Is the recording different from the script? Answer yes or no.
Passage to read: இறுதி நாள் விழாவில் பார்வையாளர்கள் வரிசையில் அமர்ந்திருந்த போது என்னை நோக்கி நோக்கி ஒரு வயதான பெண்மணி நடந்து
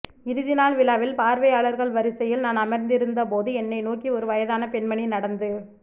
yes